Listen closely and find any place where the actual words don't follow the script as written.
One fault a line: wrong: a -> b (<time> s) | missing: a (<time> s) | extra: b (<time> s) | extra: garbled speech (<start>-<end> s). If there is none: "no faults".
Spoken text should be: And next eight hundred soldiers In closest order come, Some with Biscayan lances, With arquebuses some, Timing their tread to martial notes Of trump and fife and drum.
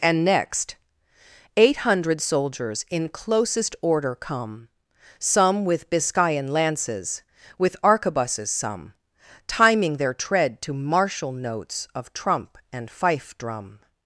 missing: and (13.4 s)